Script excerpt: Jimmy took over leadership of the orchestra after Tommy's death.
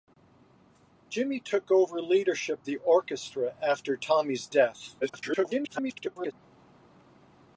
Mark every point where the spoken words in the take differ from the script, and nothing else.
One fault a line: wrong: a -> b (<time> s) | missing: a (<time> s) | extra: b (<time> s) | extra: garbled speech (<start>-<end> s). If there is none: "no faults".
missing: of (2.6 s)
extra: garbled speech (5.0-6.3 s)